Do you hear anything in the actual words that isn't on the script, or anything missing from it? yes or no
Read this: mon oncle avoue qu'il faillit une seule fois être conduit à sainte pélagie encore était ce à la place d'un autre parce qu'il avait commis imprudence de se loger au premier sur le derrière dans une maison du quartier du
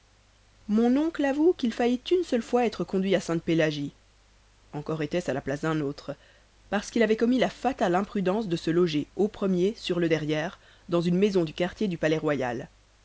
yes